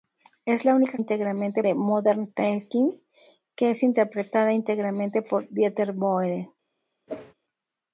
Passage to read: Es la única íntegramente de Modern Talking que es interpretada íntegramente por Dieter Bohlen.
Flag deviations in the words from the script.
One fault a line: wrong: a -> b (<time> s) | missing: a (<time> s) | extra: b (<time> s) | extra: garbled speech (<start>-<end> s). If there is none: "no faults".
no faults